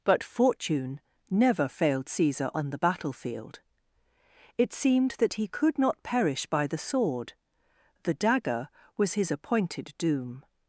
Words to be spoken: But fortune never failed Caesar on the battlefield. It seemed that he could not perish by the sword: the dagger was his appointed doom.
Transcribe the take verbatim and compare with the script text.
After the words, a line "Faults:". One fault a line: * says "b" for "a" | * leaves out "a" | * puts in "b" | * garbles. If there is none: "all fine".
But fortune never failed Caesar on the battlefield. It seemed that he could not perish by the sword: the dagger was his appointed doom.
Faults:
all fine